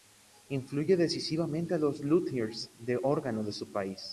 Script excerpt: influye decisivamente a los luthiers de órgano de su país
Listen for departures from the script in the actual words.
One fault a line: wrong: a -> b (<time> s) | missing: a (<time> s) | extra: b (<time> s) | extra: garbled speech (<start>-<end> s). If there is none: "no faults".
no faults